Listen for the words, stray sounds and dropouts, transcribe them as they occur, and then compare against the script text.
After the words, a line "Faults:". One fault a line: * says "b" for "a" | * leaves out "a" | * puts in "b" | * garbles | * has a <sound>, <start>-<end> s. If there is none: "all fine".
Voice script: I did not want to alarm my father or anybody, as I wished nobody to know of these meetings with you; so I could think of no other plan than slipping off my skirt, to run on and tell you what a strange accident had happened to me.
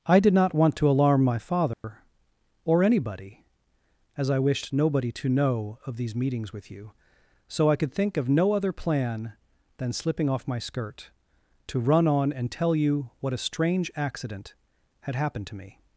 I did not want to alarm my father or anybody, as I wished nobody to know of these meetings with you; so I could think of no other plan than slipping off my skirt, to run on and tell you what a strange accident had happened to me.
Faults:
* has a dropout, 1.7-1.8 s